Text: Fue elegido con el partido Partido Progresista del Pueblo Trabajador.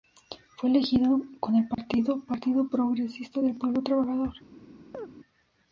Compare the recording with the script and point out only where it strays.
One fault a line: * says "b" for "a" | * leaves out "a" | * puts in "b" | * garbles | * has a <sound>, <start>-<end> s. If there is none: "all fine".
* has a dropout, 1.7-1.8 s
* has a chirp, 4.9-5.1 s